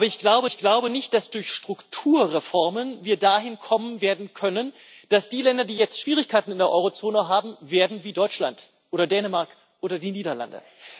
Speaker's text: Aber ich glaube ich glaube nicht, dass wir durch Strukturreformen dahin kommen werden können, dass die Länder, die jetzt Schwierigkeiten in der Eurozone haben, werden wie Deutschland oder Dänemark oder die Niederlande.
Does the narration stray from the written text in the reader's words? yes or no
no